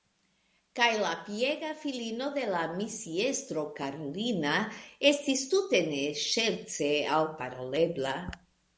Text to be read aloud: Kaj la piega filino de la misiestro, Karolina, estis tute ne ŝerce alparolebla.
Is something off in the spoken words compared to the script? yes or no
no